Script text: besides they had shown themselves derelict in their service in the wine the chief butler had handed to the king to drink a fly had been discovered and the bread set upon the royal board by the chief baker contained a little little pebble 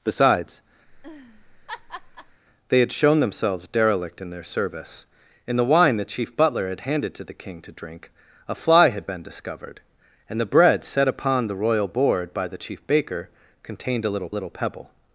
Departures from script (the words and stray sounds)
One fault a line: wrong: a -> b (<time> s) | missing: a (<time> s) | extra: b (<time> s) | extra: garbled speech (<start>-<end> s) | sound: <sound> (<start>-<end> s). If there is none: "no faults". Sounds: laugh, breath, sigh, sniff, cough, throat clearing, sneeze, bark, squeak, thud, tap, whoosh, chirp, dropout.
sound: laugh (0.9-2.4 s)